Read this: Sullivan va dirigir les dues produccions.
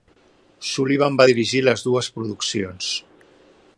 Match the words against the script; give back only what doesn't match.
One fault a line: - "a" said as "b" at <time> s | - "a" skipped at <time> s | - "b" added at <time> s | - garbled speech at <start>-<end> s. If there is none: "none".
none